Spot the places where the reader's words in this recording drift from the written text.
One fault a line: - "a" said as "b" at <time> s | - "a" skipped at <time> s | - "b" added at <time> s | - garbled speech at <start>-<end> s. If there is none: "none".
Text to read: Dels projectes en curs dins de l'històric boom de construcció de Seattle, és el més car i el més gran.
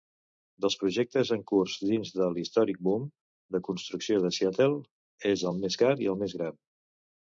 none